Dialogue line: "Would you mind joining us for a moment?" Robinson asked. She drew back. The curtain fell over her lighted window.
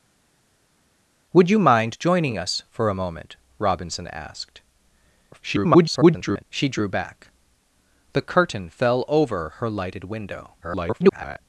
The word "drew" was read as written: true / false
true